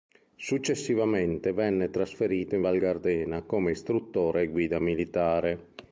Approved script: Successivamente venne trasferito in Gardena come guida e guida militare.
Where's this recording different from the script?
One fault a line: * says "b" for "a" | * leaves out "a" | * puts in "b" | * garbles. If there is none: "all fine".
* puts in "Val"
* says "istruttore" for "guida"